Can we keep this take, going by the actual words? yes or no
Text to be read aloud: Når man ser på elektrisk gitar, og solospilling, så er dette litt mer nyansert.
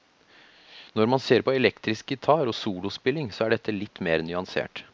yes